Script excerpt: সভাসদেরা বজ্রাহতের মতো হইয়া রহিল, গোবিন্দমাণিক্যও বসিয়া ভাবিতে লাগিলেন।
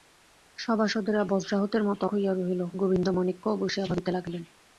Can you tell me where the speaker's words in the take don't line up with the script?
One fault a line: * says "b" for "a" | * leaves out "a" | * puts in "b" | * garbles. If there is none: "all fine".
all fine